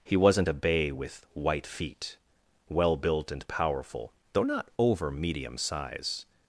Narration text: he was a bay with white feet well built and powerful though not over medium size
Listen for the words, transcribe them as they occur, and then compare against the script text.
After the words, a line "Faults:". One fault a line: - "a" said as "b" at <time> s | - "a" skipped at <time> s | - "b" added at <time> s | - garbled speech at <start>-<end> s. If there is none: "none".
he wasn't a bay with white feet well built and powerful though not over medium size
Faults:
- "was" said as "wasn't" at 0.2 s